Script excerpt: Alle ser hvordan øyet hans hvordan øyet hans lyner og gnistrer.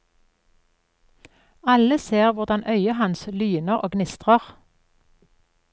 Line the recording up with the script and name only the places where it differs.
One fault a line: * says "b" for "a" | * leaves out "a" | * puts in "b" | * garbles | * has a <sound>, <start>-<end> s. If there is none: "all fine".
* leaves out "hvordan øyet hans"